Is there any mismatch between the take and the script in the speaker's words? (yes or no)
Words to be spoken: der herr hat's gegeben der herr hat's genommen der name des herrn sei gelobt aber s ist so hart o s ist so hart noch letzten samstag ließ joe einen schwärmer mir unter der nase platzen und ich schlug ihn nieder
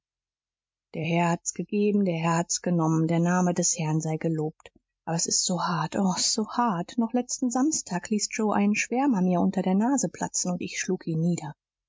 no